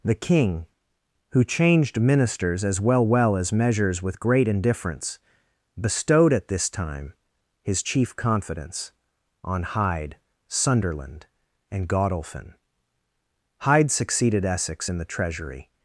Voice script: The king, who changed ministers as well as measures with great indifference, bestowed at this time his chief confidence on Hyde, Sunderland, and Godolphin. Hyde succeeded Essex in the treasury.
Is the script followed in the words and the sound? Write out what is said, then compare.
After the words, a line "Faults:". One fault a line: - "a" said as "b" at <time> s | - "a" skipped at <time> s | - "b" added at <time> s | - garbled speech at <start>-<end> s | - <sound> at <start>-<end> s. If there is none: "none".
The king, who changed ministers as well well as measures with great indifference, bestowed at this time his chief confidence on Hyde, Sunderland, and Godolphin. Hyde succeeded Essex in the treasury.
Faults:
- "well" added at 3.0 s